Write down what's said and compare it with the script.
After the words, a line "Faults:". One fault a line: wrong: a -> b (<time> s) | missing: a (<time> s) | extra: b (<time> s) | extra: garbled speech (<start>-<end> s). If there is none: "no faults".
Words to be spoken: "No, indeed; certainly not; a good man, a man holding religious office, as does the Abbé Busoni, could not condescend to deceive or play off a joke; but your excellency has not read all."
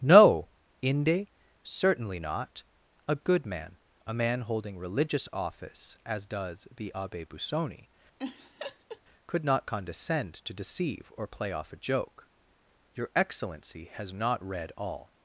"No, inde; certainly not; a good man, a man holding religious office, as does the Abbé Busoni, could not condescend to deceive or play off a joke; your excellency has not read all."
Faults:
wrong: indeed -> inde (0.8 s)
missing: but (12.3 s)